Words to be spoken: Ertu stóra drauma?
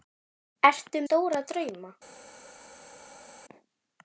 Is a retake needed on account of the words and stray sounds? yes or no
no